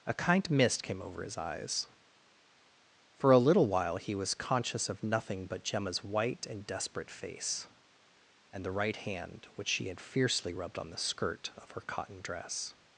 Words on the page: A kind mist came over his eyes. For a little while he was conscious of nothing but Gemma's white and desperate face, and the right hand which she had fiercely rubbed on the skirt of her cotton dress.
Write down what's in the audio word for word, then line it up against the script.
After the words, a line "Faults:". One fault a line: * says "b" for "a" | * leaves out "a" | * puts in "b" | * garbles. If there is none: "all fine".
A kind mist came over his eyes. For a little while he was conscious of nothing but Gemma's white and desperate face, and the right hand which she had fiercely rubbed on the skirt of her cotton dress.
Faults:
all fine